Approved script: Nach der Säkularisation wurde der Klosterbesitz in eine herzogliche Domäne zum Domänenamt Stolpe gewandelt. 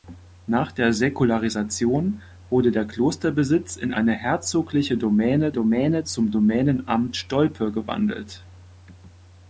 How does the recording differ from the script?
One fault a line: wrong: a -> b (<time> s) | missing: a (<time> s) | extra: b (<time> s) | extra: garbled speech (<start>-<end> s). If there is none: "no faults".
extra: Domäne (5.5 s)